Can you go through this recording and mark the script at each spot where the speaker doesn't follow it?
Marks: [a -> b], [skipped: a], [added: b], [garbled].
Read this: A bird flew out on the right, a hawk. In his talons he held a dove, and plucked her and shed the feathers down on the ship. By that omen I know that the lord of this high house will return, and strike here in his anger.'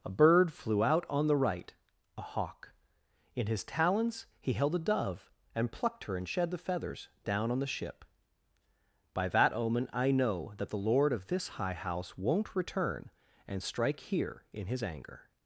A bird flew out on the right, a hawk. In his talons he held a dove, and plucked her and shed the feathers down on the ship. By that omen I know that the lord of this high house [will -> won't] return, and strike here in his anger.'